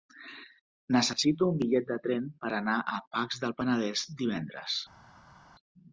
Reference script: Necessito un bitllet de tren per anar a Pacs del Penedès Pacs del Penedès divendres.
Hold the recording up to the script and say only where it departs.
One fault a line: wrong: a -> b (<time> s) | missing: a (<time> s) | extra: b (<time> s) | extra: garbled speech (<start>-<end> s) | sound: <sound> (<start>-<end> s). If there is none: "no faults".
missing: Pacs del Penedès (4.1 s)